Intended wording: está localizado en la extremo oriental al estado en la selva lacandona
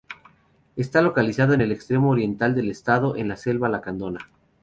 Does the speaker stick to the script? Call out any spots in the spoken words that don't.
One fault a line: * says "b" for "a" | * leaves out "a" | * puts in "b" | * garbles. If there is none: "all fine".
* says "el" for "la"
* says "del" for "al"